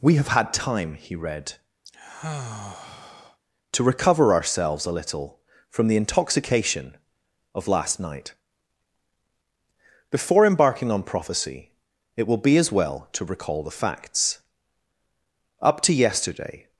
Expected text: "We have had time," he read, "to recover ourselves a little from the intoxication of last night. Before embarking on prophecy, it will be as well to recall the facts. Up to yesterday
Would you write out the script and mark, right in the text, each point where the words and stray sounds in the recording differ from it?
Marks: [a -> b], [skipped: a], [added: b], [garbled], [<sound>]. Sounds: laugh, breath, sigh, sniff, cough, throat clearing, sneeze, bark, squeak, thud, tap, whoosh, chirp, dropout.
"We have had time," he read, [sigh] "to recover ourselves a little from the intoxication of last night. Before embarking on prophecy, it will be as well to recall the facts. Up to yesterday